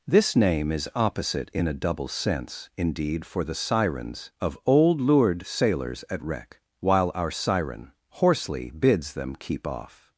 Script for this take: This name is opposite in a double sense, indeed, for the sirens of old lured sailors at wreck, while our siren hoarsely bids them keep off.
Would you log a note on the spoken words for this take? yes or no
no